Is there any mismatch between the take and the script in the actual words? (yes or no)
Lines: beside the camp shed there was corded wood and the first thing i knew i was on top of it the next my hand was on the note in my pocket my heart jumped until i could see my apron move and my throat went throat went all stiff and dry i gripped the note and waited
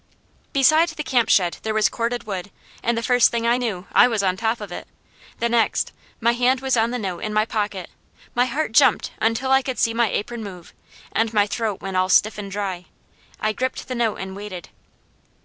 yes